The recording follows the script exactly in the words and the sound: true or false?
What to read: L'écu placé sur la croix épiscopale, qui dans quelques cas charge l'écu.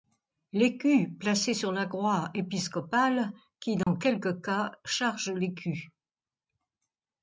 false